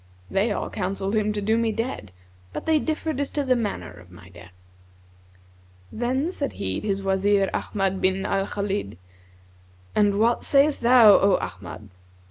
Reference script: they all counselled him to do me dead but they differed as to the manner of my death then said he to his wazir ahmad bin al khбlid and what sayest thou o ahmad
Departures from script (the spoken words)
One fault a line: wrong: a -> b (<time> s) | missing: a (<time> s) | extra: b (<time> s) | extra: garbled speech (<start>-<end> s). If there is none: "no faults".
missing: to (6.8 s)